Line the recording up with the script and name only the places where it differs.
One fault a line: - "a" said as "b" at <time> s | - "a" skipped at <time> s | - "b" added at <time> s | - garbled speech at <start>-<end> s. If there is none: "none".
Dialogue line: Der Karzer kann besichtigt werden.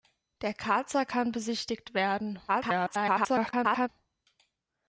- garbled speech at 2.5-3.9 s